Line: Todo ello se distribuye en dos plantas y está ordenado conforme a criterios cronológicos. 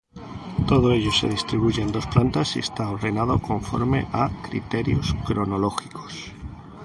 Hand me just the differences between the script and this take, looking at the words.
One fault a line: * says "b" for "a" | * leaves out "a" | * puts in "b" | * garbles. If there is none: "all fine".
all fine